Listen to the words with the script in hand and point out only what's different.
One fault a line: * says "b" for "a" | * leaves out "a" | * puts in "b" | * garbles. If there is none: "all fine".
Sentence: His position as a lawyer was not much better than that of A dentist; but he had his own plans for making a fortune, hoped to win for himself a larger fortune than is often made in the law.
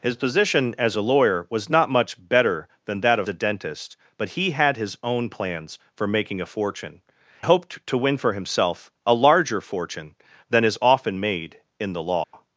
all fine